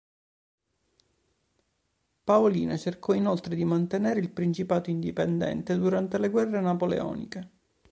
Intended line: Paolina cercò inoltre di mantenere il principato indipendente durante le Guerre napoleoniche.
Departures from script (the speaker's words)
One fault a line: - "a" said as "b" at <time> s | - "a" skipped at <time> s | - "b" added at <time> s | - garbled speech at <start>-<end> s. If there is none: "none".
none